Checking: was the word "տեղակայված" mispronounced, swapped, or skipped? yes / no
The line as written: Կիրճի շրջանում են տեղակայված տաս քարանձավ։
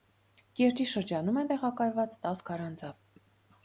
no